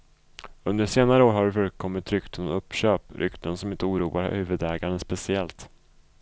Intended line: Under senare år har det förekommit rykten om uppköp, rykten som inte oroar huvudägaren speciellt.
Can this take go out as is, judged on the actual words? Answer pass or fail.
pass